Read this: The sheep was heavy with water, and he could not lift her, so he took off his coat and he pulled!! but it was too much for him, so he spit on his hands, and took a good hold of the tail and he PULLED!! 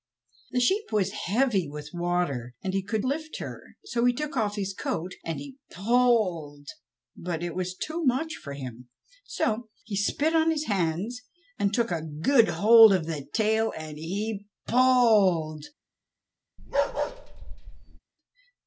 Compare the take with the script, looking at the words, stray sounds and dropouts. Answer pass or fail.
fail